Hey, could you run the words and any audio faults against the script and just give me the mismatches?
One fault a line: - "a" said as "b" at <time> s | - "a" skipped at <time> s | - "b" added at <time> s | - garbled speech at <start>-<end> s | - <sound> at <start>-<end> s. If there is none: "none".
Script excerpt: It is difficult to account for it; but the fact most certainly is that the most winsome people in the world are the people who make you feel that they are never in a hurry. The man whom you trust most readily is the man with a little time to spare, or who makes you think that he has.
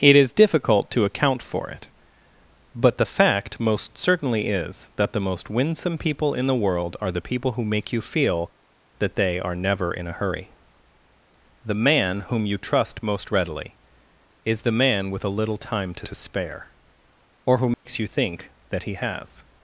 - "to" added at 16.0 s
- dropout at 17.7-17.9 s